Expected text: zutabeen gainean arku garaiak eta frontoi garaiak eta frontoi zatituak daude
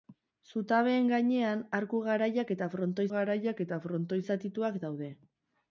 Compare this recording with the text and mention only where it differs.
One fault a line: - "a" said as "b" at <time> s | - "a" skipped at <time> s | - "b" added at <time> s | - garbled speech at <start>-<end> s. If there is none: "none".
none